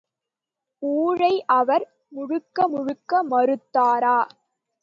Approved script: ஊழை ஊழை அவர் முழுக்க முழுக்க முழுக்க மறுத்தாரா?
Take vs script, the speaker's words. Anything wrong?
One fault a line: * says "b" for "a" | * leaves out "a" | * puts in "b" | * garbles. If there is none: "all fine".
* leaves out "ஊழை"
* leaves out "முழுக்க"